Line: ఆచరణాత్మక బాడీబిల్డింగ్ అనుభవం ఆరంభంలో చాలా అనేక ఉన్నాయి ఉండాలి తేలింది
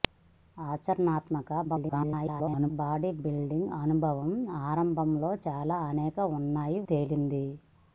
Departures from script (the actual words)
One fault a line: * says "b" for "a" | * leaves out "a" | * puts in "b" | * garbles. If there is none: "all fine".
* garbles
* leaves out "ఉండాలి"